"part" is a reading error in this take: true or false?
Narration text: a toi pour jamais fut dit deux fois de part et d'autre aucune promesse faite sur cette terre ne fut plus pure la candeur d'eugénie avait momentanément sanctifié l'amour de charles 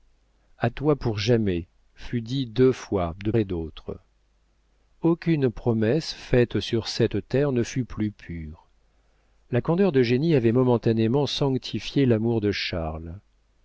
true